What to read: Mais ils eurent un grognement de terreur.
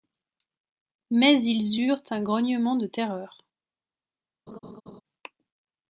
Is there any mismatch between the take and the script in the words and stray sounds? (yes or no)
yes